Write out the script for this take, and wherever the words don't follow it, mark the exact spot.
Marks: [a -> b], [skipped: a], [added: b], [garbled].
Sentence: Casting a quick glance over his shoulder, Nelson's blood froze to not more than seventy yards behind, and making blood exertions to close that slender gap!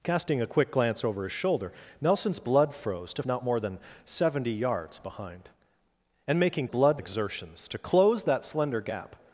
Casting a quick glance over his shoulder, Nelson's blood froze to not more than seventy yards behind, and making blood exertions to close that slender gap!